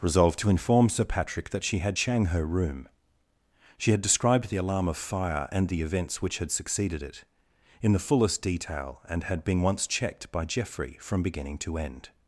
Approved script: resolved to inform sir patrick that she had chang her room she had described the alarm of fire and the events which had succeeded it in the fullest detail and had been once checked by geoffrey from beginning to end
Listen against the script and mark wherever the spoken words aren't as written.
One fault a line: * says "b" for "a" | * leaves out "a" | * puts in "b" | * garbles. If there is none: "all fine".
all fine